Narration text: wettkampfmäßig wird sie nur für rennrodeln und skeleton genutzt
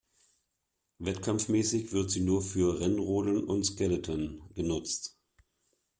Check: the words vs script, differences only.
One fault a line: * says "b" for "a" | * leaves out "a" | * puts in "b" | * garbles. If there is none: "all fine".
all fine